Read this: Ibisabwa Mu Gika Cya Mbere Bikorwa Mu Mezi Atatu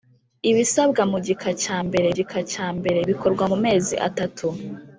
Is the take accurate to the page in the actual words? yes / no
no